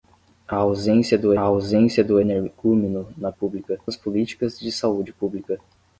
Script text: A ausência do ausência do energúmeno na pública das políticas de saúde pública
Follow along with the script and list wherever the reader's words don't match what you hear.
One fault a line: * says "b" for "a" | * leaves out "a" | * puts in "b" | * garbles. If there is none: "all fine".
all fine